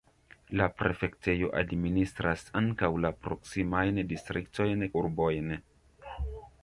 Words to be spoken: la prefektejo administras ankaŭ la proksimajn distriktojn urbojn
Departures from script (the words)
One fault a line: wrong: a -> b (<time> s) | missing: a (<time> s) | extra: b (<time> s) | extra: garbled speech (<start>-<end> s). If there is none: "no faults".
no faults